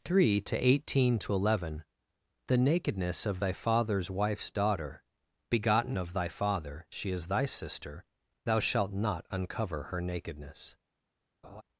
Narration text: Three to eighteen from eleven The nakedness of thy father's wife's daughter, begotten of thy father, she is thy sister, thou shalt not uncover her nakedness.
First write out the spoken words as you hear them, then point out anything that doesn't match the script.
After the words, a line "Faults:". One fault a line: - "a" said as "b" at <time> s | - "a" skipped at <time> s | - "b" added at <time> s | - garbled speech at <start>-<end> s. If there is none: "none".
Three to eighteen to eleven The nakedness of thy father's wife's daughter, begotten of thy father, she is thy sister, thou shalt not uncover her nakedness.
Faults:
- "from" said as "to" at 1.2 s